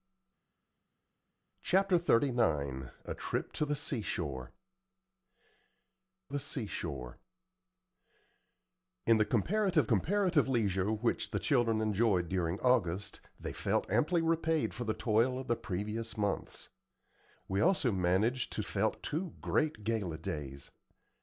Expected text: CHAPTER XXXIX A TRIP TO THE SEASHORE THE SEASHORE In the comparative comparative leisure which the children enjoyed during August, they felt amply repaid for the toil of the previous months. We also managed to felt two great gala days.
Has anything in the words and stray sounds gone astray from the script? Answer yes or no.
no